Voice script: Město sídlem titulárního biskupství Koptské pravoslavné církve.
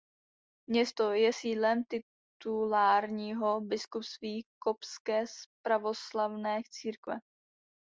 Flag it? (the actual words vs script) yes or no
yes